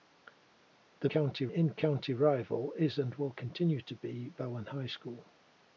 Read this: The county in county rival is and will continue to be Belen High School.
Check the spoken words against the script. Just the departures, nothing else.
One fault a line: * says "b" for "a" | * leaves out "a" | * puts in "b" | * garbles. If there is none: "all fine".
all fine